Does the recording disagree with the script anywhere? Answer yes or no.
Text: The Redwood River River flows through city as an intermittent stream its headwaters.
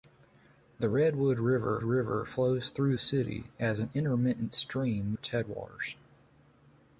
no